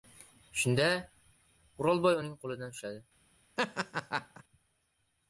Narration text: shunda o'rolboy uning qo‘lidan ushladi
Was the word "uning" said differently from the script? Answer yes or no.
no